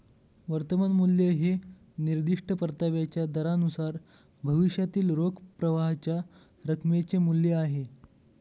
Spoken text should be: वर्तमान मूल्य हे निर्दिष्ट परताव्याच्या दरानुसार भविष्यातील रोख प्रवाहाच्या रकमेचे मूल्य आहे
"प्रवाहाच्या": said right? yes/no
yes